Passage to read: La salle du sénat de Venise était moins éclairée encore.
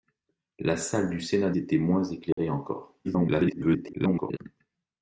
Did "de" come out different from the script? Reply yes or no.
yes